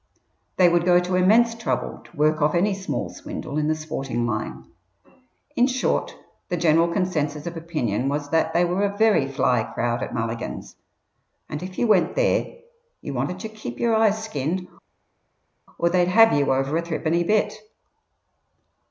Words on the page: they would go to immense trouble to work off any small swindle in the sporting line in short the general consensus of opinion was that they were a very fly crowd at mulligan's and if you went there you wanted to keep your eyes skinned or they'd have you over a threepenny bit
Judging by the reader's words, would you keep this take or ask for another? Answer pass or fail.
pass